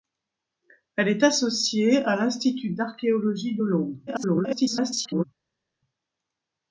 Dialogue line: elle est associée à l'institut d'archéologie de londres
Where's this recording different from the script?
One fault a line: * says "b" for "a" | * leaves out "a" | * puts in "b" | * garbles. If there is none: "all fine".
* garbles